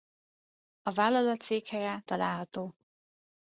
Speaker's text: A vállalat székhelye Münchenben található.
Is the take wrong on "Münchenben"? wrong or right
wrong